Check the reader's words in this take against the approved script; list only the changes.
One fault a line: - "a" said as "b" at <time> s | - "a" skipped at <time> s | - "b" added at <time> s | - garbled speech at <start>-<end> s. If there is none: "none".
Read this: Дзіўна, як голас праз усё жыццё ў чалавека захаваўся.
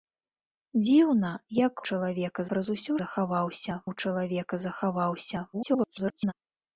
- "голас" said as "чалавека" at 1.9 s
- "жыццё" said as "захаваўся" at 3.0 s
- garbled speech at 5.5-6.3 s